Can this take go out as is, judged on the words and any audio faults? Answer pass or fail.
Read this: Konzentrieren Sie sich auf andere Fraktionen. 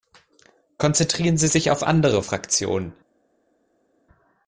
pass